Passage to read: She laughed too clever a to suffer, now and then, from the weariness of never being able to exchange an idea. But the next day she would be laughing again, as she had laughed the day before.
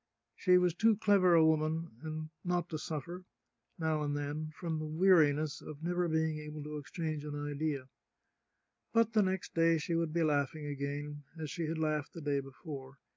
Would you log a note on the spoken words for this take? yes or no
yes